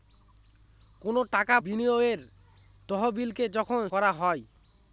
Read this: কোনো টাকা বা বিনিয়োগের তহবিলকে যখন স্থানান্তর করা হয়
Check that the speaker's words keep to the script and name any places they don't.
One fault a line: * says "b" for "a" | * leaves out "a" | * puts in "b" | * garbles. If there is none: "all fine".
* leaves out "বা"
* leaves out "স্থানান্তর"